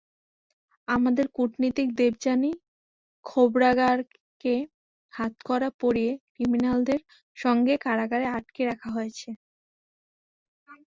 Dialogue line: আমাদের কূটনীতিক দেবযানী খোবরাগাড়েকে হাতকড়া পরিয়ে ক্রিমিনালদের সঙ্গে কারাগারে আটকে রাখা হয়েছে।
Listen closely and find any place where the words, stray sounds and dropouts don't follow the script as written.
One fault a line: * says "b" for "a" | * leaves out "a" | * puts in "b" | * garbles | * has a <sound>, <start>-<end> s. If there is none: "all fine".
all fine